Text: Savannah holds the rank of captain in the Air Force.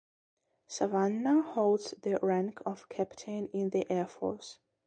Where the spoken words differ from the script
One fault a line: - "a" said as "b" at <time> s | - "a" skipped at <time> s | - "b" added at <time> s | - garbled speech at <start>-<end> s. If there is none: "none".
none